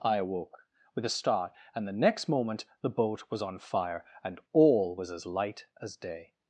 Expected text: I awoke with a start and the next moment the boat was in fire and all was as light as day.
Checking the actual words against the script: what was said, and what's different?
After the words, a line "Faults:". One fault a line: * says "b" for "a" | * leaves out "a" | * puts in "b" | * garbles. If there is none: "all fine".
I awoke with a start and the next moment the boat was on fire and all was as light as day.
Faults:
* says "on" for "in"